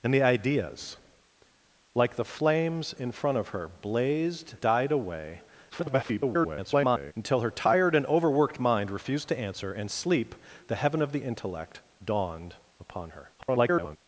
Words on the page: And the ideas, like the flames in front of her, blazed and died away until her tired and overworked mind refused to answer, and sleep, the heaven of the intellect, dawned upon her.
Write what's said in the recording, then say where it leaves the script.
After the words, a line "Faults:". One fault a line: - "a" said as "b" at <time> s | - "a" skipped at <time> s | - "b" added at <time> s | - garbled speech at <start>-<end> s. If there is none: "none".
And the ideas, like the flames in front of her, blazed died away [garbled] until her tired and overworked mind refused to answer, and sleep, the heaven of the intellect, dawned upon her. [garbled]
Faults:
- "and" skipped at 4.5 s
- garbled speech at 5.7-7.1 s
- garbled speech at 13.4-14.0 s